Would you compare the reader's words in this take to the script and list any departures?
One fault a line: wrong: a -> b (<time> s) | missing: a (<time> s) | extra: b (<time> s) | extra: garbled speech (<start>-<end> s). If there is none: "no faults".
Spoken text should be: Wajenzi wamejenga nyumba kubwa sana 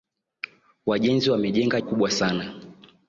missing: nyumba (1.8 s)